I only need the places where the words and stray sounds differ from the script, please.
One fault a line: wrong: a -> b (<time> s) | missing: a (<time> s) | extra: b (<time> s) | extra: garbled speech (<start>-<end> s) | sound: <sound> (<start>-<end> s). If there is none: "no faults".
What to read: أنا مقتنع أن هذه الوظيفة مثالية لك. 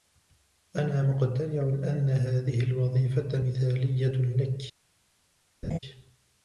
sound: laugh (5.6-5.8 s)